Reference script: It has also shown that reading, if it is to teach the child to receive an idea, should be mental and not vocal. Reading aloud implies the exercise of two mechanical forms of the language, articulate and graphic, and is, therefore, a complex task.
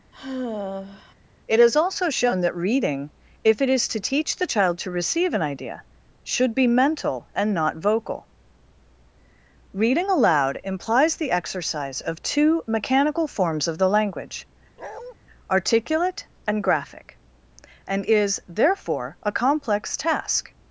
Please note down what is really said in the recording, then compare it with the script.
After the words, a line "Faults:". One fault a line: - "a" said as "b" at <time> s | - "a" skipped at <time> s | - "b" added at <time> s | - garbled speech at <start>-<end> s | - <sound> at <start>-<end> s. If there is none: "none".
It is also shown that reading, if it is to teach the child to receive an idea, should be mental and not vocal. Reading aloud implies the exercise of two mechanical forms of the language, articulate and graphic, and is, therefore, a complex task.
Faults:
- sigh at 0.1-1.1 s
- "has" said as "is" at 1.6 s
- bark at 14.8-15.1 s